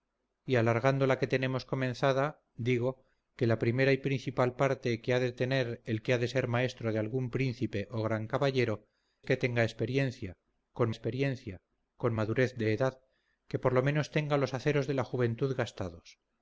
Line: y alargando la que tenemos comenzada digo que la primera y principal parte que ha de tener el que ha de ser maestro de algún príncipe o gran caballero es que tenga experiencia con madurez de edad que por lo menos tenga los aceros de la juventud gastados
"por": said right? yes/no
yes